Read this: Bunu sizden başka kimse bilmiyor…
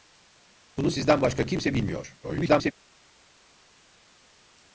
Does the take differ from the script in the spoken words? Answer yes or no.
yes